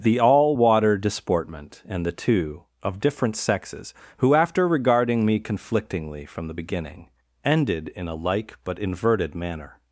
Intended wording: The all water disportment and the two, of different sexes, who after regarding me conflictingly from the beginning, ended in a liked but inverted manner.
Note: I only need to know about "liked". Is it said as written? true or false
false